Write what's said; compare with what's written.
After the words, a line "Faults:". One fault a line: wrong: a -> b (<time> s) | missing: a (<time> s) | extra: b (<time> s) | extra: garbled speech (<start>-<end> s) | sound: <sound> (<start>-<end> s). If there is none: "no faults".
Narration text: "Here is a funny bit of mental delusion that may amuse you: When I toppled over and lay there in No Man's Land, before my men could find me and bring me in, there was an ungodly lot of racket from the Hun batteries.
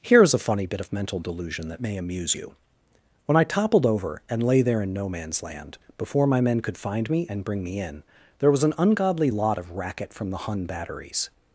"Here is a funny bit of mental delusion that may amuse you: When I toppled over and lay there in No Man's Land, before my men could find me and bring me in, there was an ungodly lot of racket from the Hun batteries.
Faults:
no faults